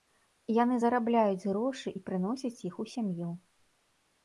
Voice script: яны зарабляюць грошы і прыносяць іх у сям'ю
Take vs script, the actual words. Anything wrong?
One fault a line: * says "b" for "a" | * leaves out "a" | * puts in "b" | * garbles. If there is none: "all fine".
all fine